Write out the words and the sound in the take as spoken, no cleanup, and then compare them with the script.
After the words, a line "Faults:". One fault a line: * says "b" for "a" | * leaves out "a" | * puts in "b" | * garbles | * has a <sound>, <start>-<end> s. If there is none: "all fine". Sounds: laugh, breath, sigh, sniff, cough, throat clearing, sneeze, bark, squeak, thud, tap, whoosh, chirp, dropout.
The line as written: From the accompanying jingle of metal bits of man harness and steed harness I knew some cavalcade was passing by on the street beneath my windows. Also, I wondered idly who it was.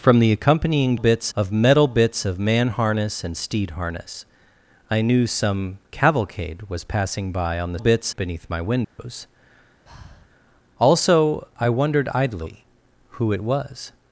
From the accompanying bits of metal bits of man harness and steed harness I knew some cavalcade was passing by on the bits beneath my windows. Also, I wondered idly who it was.
Faults:
* says "bits" for "jingle"
* says "bits" for "street"
* has a dropout, 8.8-9.0 s
* has a breath, 9.9-10.3 s